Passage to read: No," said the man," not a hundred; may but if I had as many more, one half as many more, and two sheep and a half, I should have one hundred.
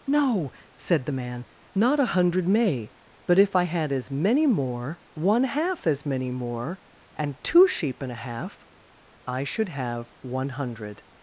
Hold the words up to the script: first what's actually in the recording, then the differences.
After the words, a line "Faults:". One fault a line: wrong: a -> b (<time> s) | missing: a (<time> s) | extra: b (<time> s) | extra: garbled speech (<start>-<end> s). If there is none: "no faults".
No," said the man," not a hundred; may but if I had as many more, one half as many more, and two sheep and a half, I should have one hundred.
Faults:
no faults